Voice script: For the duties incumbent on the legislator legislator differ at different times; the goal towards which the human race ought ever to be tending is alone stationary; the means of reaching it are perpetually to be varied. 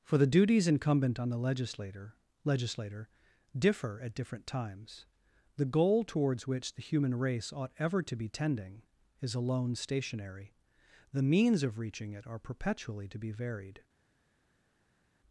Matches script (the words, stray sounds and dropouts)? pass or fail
pass